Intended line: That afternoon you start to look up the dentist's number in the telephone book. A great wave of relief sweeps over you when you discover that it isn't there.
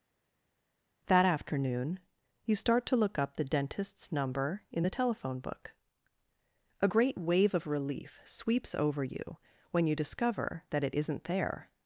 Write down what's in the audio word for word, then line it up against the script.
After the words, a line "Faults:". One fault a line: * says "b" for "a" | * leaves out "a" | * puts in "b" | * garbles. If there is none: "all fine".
That afternoon you start to look up the dentist's number in the telephone book. A great wave of relief sweeps over you when you discover that it isn't there.
Faults:
all fine